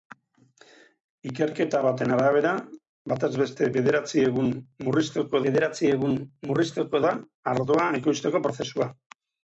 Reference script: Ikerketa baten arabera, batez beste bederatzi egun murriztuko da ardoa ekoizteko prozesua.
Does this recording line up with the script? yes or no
no